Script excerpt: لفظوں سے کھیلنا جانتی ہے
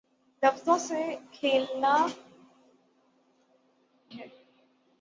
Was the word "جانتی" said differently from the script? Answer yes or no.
yes